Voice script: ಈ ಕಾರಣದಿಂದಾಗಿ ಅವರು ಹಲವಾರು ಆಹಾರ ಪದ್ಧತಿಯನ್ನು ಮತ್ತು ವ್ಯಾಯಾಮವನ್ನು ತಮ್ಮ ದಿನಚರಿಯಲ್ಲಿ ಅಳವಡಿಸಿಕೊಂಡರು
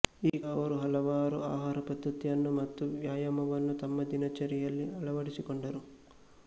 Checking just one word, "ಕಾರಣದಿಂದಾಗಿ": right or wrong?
wrong